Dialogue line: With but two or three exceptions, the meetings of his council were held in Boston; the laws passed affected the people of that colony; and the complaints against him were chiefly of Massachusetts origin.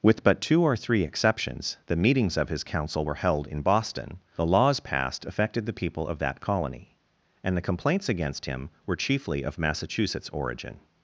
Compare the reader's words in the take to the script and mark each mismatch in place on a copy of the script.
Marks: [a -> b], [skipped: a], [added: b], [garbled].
With but two or three exceptions, the meetings of his council were held in Boston; the laws passed affected the people of that colony; and the complaints against him were chiefly of Massachusetts origin.